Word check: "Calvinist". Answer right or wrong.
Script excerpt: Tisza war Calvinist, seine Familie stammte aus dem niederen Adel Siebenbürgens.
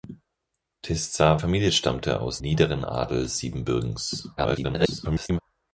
wrong